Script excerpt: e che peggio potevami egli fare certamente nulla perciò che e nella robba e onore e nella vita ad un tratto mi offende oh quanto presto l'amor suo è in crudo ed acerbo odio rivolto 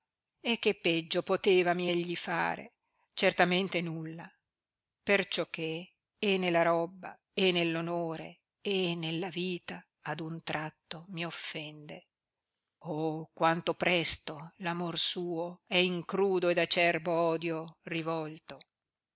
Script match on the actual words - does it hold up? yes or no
no